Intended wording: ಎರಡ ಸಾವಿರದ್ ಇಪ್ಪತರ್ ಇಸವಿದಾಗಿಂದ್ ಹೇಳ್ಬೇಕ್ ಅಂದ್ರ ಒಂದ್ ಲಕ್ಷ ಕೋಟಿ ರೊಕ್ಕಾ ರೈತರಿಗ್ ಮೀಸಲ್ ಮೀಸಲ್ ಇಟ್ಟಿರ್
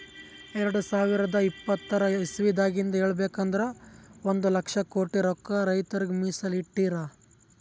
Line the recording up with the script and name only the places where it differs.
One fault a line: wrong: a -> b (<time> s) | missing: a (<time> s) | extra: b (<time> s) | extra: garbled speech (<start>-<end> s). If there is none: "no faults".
missing: ಮೀಸಲ್ (6.6 s)